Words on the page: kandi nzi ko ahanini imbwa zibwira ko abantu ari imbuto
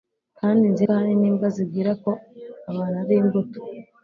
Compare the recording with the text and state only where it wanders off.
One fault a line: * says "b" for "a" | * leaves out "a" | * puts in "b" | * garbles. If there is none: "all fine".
all fine